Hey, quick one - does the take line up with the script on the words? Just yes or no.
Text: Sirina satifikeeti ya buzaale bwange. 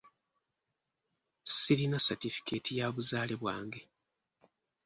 yes